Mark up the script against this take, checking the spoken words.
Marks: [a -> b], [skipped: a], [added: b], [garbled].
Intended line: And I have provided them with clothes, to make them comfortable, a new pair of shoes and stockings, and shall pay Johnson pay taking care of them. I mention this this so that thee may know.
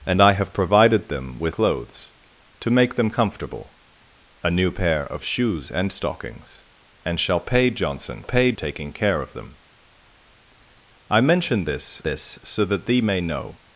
And I have provided them with clothes, to make them comfortable, a new pair of shoes and stockings, and shall pay Johnson pay taking care of them. I mention this this so that thee may know.